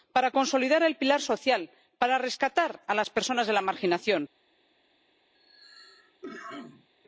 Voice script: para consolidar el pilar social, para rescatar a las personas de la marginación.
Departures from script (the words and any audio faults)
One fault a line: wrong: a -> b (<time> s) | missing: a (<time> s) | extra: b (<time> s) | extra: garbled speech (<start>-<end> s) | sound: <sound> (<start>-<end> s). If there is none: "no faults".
sound: cough (5.3-6.9 s)